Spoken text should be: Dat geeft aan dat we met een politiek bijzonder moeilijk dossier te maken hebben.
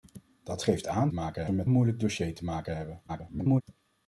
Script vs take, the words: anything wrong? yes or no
yes